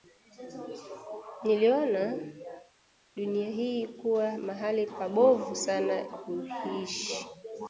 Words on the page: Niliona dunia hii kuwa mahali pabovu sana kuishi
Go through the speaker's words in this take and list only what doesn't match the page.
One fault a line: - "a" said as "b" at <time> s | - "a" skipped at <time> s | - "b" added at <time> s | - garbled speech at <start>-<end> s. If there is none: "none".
none